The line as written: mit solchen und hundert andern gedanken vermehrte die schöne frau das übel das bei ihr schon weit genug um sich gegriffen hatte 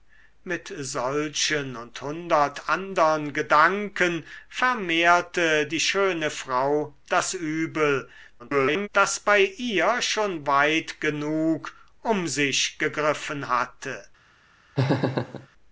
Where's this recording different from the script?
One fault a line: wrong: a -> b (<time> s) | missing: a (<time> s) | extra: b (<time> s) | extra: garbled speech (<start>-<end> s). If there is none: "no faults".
extra: garbled speech (8.4-8.9 s)